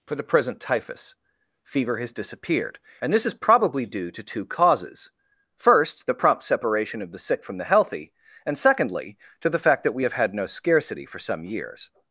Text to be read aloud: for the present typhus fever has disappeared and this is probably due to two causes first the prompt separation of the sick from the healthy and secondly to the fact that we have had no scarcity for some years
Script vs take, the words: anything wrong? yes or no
no